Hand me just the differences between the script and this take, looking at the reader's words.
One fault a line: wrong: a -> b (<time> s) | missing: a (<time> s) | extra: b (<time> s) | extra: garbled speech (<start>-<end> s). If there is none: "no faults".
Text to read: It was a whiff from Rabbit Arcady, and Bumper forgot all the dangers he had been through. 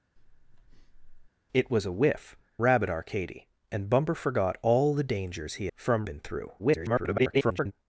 missing: from (2.4 s)
wrong: had -> from (5.7 s)
extra: garbled speech (6.6-7.7 s)